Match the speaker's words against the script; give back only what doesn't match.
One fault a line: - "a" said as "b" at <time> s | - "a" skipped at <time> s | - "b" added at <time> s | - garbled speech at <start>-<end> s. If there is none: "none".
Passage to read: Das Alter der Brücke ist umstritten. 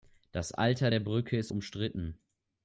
none